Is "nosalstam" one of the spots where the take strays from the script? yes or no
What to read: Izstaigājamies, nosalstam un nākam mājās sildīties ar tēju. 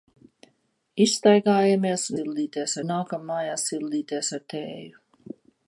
yes